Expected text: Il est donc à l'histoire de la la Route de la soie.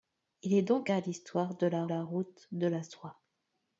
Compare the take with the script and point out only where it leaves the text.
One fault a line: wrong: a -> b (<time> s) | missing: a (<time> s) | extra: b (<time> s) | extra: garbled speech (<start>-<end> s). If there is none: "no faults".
no faults